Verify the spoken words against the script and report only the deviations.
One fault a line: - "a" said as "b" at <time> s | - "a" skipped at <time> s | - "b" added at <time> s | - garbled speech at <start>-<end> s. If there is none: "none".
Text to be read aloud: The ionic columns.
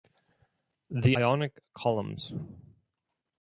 none